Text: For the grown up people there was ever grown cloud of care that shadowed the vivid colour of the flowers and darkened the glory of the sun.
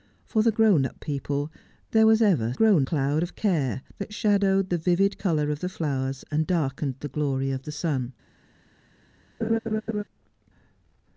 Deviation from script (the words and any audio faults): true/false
true